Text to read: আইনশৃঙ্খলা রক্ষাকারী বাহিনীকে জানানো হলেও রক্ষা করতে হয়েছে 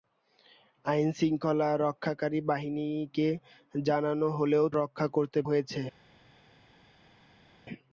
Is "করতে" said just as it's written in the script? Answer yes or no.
yes